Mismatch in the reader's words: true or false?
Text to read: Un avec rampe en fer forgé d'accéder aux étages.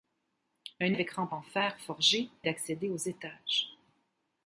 false